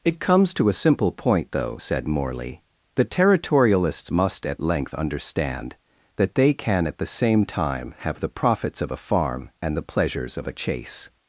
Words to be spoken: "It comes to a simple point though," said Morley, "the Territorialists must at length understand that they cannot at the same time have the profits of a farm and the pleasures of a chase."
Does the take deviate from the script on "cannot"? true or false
true